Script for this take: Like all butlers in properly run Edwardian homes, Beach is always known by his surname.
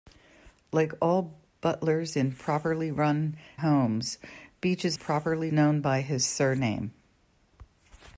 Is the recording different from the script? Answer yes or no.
yes